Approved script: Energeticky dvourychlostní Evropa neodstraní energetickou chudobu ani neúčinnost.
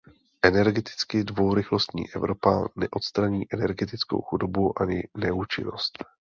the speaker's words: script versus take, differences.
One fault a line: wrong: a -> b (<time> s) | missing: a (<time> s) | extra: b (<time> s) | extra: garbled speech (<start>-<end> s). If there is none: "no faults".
no faults